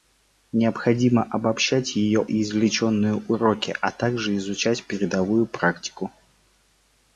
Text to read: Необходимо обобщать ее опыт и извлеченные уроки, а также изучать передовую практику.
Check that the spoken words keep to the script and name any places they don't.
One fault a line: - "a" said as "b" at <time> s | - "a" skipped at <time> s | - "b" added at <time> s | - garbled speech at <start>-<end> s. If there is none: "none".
- "опыт" skipped at 2.2 s